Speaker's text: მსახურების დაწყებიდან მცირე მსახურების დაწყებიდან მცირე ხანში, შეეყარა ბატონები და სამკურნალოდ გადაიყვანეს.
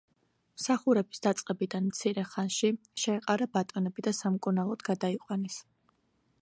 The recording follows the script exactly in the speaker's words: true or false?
false